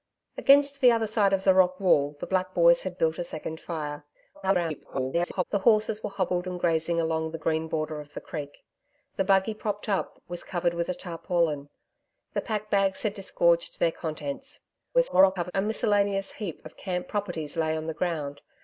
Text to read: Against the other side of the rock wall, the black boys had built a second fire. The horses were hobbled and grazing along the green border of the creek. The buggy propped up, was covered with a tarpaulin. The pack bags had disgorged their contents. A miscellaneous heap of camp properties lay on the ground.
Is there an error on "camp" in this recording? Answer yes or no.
no